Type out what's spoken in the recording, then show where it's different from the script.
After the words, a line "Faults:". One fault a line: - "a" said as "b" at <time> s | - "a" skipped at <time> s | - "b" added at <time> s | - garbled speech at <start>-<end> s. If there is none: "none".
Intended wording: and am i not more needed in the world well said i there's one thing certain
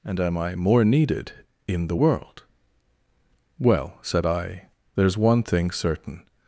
and am i more needed in the world well said i there's one thing certain
Faults:
- "not" skipped at 0.6 s